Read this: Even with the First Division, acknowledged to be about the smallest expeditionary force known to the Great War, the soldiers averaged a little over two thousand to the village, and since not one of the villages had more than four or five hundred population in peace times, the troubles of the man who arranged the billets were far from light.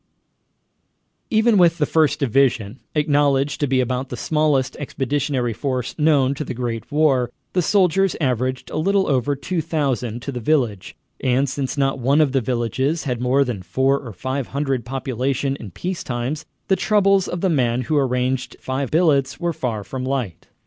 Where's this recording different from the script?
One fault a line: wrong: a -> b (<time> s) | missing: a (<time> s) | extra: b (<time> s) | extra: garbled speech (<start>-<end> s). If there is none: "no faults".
wrong: the -> five (18.5 s)